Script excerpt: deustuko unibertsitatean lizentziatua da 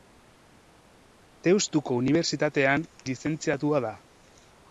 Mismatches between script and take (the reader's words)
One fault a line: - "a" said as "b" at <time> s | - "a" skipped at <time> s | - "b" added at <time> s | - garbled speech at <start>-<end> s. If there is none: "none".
none